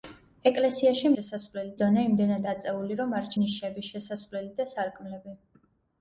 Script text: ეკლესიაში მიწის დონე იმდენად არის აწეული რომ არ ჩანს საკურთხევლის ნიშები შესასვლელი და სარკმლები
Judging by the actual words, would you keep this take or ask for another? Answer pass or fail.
fail